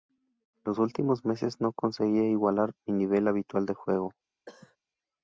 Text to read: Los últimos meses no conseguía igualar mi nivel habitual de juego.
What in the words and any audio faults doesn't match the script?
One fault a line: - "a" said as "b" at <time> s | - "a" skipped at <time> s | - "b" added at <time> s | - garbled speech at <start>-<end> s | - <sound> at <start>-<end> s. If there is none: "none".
- cough at 4.5-4.8 s